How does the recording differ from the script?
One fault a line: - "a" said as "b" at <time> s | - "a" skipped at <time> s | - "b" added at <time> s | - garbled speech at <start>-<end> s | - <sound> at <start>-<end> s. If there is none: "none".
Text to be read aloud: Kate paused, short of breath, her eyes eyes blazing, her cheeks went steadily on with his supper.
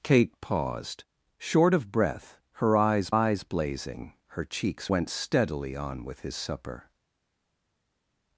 none